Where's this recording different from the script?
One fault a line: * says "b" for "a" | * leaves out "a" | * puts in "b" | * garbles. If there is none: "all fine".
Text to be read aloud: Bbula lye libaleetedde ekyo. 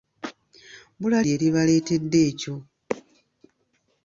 all fine